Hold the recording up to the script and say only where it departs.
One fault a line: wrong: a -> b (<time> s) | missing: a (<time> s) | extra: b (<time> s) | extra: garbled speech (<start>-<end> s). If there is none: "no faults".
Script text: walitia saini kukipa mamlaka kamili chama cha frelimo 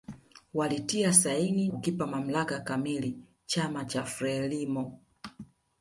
no faults